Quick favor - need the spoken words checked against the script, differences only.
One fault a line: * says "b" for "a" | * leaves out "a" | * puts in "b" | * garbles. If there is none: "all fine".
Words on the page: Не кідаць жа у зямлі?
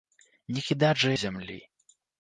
all fine